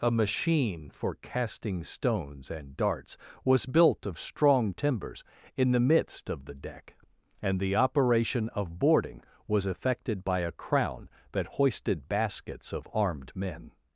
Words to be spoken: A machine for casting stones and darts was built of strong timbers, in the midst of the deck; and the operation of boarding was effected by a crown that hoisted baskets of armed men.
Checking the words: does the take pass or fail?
pass